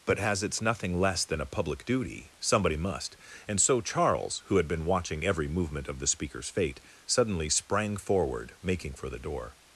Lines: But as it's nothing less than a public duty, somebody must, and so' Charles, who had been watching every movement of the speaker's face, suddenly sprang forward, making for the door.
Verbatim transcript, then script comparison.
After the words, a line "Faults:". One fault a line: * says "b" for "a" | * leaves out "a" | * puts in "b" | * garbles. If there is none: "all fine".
But as it's nothing less than a public duty, somebody must, and so' Charles, who had been watching every movement of the speaker's fate, suddenly sprang forward, making for the door.
Faults:
* says "fate" for "face"